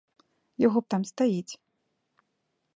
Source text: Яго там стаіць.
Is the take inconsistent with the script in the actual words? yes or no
no